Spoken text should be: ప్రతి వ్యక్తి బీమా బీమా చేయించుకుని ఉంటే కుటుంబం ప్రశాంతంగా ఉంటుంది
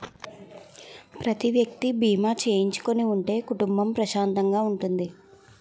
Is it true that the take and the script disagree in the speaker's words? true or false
true